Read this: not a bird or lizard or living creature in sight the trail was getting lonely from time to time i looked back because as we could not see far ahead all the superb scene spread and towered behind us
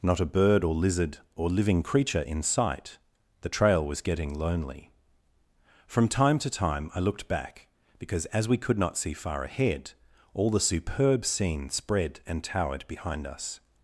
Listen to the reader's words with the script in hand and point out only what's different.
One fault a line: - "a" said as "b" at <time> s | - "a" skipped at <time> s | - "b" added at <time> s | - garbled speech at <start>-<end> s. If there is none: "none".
none